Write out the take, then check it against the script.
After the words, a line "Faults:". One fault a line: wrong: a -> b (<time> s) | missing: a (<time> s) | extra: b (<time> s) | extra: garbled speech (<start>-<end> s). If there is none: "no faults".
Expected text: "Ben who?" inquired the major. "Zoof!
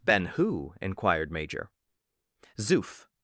"Ben who?" inquired major. "Zoof!
Faults:
missing: the (1.3 s)